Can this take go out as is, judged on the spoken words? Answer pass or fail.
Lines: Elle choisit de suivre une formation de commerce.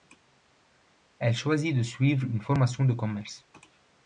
pass